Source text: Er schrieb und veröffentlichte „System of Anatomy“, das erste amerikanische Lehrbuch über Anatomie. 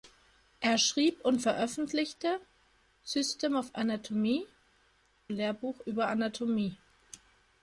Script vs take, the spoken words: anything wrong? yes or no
yes